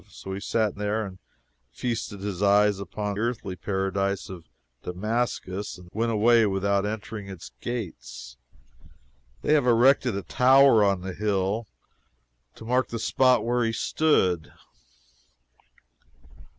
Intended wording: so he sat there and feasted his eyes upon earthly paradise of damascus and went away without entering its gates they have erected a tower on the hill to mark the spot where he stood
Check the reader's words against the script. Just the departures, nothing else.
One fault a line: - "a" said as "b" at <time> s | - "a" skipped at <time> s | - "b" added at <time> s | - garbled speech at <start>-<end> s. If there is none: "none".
none